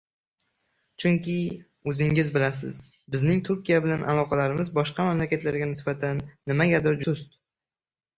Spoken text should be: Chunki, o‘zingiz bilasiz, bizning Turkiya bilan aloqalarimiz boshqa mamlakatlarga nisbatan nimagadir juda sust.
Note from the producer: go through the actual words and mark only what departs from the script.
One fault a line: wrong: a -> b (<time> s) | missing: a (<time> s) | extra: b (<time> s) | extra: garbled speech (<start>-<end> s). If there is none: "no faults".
missing: juda (7.0 s)